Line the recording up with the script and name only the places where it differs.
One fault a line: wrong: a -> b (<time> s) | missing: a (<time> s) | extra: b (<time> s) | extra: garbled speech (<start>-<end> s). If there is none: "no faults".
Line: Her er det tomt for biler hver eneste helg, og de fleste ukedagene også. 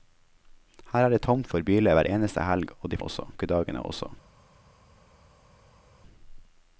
wrong: fleste -> også (3.0 s)